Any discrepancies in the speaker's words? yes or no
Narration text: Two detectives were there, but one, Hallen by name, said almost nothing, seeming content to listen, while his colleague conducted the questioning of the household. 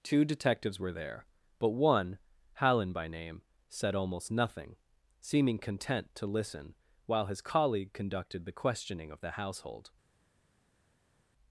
no